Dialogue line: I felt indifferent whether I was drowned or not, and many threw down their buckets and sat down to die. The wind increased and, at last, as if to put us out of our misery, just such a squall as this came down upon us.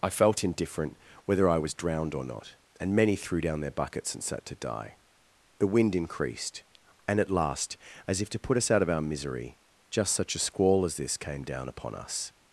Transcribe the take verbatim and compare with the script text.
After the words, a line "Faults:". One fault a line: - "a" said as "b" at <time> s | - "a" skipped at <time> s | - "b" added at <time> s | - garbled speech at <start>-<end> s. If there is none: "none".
I felt indifferent whether I was drowned or not, and many threw down their buckets and sat to die. The wind increased and, at last, as if to put us out of our misery, just such a squall as this came down upon us.
Faults:
- "down" skipped at 4.5 s